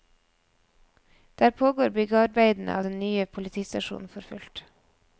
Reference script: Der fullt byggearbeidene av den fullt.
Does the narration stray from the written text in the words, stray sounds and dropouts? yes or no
yes